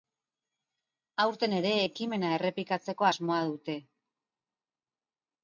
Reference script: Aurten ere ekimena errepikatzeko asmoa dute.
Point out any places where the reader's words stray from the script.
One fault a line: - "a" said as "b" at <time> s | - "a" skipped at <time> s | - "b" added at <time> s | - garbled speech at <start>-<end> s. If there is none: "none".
none